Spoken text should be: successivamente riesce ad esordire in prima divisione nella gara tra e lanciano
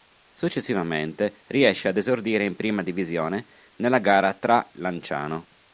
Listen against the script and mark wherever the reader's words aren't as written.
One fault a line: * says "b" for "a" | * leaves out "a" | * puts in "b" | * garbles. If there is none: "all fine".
* leaves out "e"